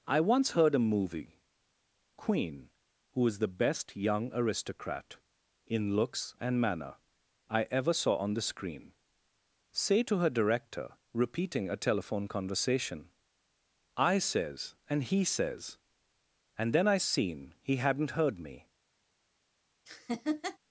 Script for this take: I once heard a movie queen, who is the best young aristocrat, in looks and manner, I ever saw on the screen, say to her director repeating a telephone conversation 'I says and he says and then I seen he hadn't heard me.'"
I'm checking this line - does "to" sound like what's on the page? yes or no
yes